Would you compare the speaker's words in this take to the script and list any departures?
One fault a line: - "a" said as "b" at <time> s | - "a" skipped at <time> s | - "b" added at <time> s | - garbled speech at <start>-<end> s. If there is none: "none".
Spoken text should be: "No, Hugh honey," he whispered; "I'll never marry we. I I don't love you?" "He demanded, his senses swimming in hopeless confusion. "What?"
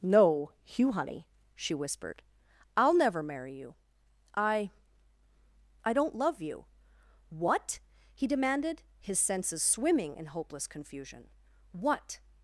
- "he" said as "she" at 1.6 s
- "we" said as "you" at 3.5 s
- "What" added at 7.3 s